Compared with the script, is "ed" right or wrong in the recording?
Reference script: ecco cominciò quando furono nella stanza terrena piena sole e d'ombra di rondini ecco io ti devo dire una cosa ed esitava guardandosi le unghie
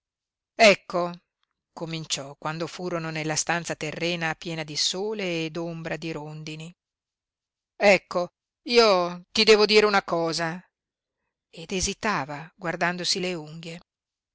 right